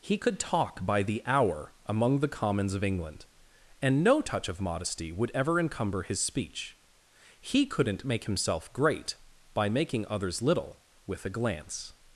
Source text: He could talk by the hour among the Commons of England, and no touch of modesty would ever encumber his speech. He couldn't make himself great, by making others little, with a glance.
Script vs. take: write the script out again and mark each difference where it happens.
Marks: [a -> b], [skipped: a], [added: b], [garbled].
He could talk by the hour among the Commons of England, and no touch of modesty would ever encumber his speech. He couldn't make himself great, by making others little, with a glance.